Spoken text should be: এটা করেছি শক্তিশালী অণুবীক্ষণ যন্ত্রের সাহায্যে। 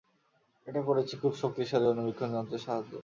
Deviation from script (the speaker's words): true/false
true